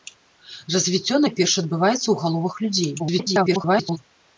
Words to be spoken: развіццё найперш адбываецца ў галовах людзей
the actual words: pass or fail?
fail